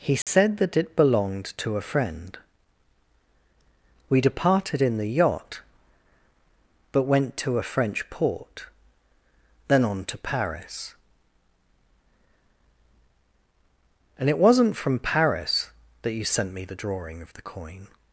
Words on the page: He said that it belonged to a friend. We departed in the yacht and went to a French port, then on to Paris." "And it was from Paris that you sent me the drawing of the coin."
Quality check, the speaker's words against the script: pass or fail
fail